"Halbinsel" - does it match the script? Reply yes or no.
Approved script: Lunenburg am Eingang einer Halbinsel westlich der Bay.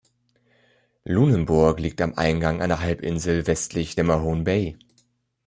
yes